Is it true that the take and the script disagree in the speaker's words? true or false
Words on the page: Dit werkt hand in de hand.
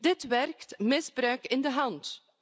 true